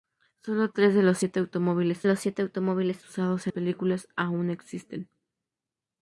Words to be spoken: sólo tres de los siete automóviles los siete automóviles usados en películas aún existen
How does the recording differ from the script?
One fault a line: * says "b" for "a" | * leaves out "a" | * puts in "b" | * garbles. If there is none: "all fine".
all fine